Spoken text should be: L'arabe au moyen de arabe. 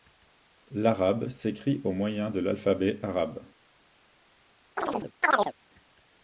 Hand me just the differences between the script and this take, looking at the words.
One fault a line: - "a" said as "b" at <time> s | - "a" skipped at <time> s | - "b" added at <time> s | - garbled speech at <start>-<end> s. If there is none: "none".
- "s'écrit" added at 1.3 s
- "l'alphabet" added at 2.4 s